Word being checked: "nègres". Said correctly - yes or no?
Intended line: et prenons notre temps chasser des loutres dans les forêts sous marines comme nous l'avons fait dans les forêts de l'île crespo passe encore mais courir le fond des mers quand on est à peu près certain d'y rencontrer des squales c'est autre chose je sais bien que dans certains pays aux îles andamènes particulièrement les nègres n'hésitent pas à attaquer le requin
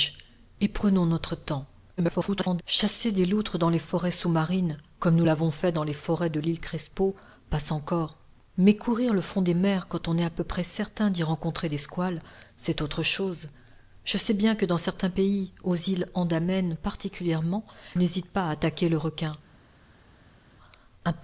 no